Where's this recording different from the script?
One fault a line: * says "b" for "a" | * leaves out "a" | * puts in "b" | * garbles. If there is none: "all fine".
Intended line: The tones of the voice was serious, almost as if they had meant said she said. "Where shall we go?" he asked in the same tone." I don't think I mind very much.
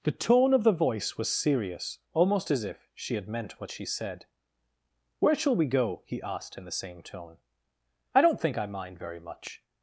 * says "tone" for "tones"
* says "she" for "they"
* says "what" for "said"